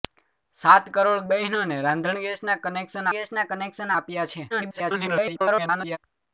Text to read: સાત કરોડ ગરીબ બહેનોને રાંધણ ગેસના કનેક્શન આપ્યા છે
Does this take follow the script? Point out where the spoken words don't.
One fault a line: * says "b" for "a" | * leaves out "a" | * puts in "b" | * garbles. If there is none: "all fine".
* leaves out "ગરીબ"
* puts in "ગેસના કનેક્શન"
* garbles